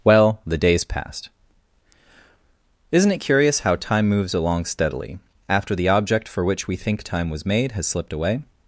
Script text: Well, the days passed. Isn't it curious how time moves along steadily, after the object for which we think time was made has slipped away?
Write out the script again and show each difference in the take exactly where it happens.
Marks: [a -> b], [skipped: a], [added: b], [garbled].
Well, the days passed. Isn't it curious how time moves along steadily, after the object for which we think time was made has slipped away?